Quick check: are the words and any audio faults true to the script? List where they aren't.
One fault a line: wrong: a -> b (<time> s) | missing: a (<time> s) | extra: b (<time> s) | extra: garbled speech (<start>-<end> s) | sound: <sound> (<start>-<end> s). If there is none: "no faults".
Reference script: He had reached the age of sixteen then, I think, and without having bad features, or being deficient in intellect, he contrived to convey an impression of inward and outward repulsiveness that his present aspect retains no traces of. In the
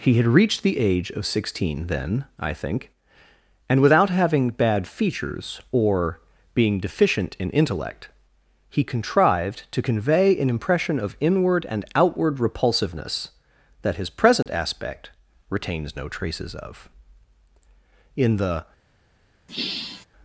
sound: dropout (14.4-14.5 s)
sound: sigh (19.5-20.1 s)